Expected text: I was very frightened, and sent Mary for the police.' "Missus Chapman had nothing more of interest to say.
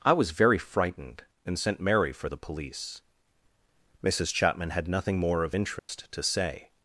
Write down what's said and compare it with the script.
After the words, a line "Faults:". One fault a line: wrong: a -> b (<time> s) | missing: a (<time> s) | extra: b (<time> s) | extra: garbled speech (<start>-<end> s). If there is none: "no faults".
I was very frightened, and sent Mary for the police.' "Missus Chapman had nothing more of interest to say.
Faults:
no faults